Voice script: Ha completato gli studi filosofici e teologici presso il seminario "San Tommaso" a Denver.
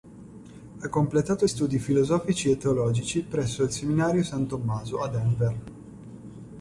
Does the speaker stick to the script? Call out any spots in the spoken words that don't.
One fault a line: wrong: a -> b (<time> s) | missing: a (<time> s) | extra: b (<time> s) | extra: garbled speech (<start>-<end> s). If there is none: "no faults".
missing: gli (1.4 s)